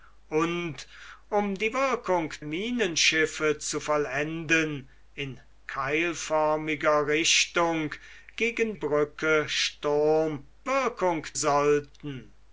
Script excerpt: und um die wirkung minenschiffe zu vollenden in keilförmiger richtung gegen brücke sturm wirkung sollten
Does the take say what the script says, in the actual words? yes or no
yes